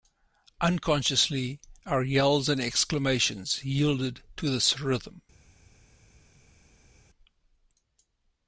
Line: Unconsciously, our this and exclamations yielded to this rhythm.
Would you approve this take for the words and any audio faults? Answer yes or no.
no